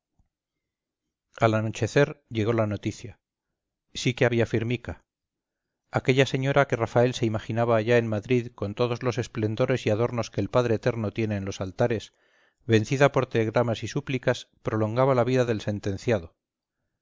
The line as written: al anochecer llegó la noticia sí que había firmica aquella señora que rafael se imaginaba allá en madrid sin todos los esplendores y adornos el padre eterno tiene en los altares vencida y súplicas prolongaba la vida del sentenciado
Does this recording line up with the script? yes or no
no